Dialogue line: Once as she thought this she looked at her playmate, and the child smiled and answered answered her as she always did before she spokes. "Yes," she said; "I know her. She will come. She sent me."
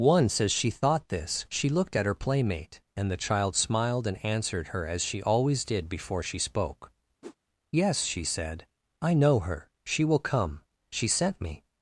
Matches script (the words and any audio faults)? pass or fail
fail